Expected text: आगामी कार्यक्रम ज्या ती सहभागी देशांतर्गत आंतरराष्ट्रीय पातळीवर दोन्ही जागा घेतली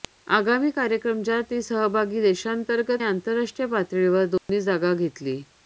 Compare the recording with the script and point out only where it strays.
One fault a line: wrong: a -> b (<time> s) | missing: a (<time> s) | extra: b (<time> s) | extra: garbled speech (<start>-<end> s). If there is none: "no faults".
no faults